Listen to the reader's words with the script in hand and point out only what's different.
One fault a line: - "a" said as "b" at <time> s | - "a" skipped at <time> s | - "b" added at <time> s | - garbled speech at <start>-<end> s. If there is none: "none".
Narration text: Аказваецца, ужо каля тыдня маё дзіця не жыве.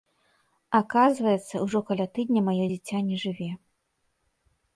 none